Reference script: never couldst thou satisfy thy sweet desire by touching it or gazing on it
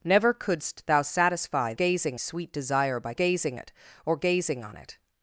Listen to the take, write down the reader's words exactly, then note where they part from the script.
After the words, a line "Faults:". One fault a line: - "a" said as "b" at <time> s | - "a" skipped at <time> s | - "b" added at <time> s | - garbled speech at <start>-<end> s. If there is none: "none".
never couldst thou satisfy gazing sweet desire by gazing it or gazing on it
Faults:
- "thy" said as "gazing" at 1.7 s
- "touching" said as "gazing" at 3.1 s